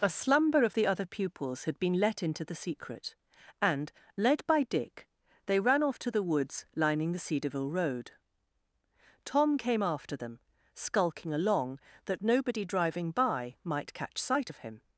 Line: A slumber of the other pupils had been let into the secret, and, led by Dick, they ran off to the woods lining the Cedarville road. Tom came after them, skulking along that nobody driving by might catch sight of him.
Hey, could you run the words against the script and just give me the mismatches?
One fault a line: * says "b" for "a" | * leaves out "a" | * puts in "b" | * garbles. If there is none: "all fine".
all fine